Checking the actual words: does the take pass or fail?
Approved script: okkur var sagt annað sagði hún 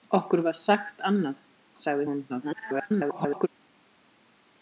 fail